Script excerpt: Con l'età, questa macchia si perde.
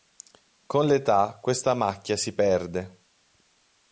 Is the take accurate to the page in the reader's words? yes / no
yes